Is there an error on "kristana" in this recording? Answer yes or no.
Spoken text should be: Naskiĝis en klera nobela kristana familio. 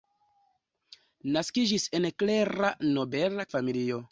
yes